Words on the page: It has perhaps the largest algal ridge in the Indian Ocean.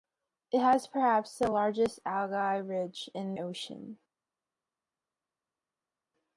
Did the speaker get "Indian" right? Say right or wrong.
wrong